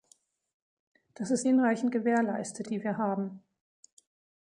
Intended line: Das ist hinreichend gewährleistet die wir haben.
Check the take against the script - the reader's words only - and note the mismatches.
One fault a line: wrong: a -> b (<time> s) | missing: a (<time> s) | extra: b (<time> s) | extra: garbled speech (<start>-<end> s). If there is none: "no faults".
no faults